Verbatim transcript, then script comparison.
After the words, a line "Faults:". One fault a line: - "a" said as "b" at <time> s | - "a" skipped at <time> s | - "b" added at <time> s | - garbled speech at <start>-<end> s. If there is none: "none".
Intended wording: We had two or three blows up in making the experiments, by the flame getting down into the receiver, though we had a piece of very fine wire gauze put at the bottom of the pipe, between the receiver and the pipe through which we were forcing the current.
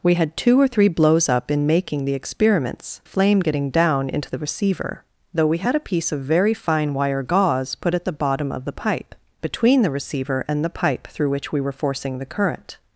We had two or three blows up in making the experiments, flame getting down into the receiver, though we had a piece of very fine wire gauze put at the bottom of the pipe, between the receiver and the pipe through which we were forcing the current.
Faults:
- "by the" skipped at 3.0 s